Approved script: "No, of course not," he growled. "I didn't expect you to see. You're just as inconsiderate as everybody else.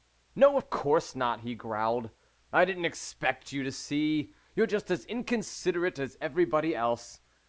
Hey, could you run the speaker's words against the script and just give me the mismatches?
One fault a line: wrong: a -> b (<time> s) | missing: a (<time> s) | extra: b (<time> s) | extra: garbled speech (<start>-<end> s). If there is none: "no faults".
no faults